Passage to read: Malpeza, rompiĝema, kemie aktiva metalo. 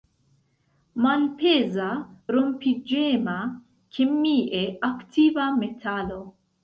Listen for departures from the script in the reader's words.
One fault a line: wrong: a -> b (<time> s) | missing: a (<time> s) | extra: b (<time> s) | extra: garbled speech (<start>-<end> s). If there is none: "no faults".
no faults